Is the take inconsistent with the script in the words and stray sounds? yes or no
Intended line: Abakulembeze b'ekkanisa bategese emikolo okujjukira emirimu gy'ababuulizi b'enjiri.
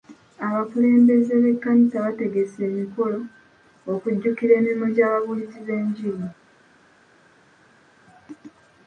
no